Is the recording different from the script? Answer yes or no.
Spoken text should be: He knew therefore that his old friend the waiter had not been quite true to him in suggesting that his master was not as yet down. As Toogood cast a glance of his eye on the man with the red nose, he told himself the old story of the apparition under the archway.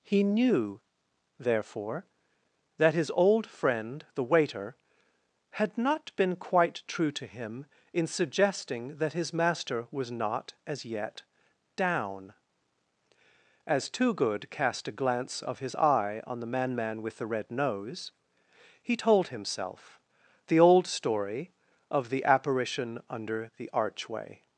yes